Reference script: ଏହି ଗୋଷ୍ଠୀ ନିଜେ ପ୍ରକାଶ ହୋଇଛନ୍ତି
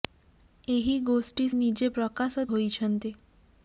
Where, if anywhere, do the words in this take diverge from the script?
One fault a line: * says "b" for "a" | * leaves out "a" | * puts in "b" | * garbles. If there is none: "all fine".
all fine